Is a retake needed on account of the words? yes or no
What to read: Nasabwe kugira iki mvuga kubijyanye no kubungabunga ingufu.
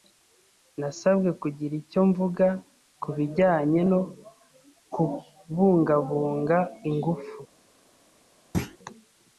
yes